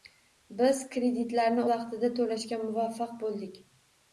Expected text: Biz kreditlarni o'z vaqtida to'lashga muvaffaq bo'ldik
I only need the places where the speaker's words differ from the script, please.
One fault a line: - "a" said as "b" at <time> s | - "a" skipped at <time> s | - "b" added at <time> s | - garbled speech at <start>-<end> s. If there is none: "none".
- "o'z" skipped at 1.7 s